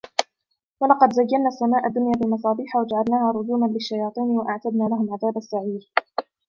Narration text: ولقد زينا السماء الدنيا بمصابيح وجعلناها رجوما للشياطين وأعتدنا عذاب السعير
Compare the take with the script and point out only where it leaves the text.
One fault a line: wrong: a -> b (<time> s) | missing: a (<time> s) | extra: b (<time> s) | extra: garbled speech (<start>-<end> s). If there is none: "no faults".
extra: لهم (4.8 s)